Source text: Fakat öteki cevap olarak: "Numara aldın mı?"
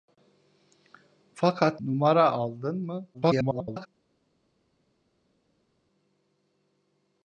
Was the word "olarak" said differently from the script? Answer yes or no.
yes